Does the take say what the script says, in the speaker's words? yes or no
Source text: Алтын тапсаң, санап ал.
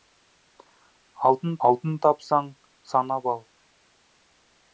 no